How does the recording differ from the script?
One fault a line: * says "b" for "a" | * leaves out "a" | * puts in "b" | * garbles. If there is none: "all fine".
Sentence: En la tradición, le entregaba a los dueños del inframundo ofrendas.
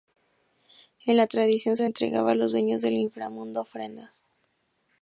all fine